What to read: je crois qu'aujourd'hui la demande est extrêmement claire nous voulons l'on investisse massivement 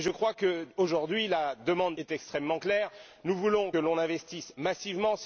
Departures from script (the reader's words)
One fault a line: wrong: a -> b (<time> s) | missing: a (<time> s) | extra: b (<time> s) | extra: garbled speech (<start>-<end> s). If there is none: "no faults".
no faults